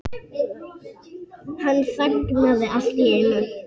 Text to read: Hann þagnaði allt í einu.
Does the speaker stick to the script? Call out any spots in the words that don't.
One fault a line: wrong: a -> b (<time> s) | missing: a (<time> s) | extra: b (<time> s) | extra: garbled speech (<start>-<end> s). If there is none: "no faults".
no faults